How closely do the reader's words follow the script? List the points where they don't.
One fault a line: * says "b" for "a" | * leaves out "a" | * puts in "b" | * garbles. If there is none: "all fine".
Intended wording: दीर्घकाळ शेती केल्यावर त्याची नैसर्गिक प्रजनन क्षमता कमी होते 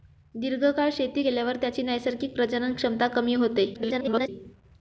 * garbles